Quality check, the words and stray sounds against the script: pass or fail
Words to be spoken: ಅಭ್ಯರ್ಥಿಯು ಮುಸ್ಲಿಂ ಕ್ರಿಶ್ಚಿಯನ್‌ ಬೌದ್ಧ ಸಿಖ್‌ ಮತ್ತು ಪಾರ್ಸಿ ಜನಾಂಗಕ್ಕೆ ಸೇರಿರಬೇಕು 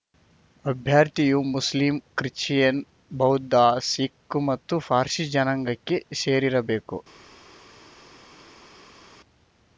pass